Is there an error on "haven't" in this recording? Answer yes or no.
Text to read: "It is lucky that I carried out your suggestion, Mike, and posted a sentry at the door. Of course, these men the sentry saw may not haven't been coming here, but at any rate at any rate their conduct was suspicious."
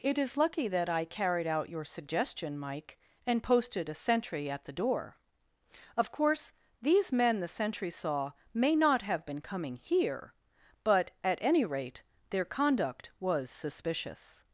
yes